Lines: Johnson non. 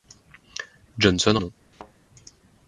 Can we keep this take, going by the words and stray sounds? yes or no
no